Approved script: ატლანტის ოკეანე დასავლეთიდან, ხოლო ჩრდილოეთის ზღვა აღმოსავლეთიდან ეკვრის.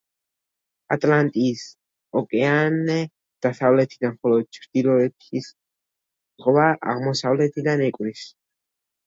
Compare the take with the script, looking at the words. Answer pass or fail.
pass